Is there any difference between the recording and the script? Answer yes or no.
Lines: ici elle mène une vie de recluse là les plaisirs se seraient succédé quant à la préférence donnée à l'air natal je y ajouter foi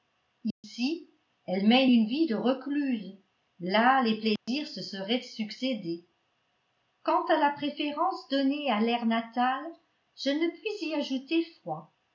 yes